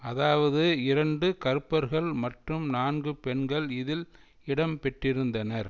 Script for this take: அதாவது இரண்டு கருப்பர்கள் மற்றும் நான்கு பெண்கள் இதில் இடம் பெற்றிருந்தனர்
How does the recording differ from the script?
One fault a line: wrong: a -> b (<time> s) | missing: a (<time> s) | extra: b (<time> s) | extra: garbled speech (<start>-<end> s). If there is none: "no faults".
no faults